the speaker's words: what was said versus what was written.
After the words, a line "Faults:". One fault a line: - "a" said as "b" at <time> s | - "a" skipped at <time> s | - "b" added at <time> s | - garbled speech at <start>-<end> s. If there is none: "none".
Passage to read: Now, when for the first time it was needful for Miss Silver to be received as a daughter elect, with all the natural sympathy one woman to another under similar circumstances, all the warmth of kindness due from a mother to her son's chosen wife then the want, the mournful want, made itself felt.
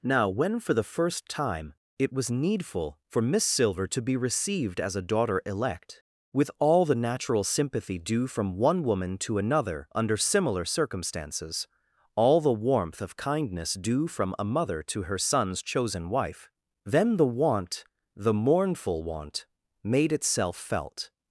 Now, when for the first time it was needful for Miss Silver to be received as a daughter elect, with all the natural sympathy due from one woman to another under similar circumstances, all the warmth of kindness due from a mother to her son's chosen wife then the want, the mournful want, made itself felt.
Faults:
- "due from" added at 8.0 s